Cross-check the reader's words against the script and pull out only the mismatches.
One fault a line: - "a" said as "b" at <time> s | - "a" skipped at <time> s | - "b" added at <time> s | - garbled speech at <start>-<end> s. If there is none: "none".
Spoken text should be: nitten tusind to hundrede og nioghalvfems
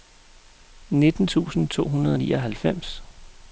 none